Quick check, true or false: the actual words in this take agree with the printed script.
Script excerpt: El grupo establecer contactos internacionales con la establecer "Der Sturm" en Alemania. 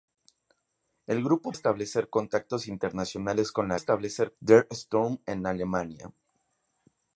true